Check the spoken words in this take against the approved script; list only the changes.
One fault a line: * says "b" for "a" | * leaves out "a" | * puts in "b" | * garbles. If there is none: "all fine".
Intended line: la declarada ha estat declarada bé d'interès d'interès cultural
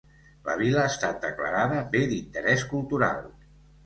* says "vila" for "declarada"
* leaves out "d'interès"